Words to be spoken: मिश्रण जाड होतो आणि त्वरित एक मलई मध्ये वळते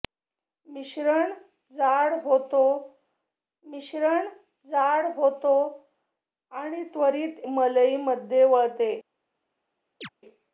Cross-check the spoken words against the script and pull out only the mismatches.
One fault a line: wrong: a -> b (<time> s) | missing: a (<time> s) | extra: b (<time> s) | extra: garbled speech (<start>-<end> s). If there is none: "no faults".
extra: मिश्रण जाड होतो (3.6 s)
missing: एक (7.4 s)